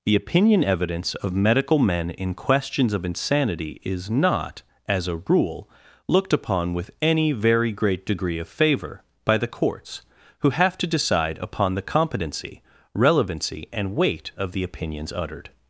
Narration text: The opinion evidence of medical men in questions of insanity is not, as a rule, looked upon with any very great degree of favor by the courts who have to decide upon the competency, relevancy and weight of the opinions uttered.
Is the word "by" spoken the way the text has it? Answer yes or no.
yes